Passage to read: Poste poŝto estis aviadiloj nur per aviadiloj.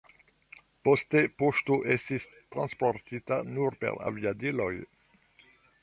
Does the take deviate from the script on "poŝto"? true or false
false